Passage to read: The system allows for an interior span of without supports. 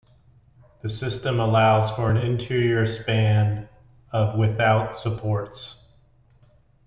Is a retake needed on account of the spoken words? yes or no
no